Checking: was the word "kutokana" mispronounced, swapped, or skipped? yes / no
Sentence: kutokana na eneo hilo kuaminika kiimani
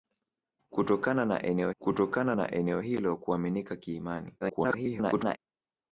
no